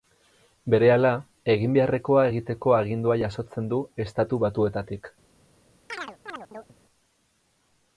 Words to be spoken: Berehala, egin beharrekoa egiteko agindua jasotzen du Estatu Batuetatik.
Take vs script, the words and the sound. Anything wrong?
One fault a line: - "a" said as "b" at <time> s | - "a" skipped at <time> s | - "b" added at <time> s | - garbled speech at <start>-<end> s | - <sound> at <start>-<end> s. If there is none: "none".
- chirp at 5.9-6.8 s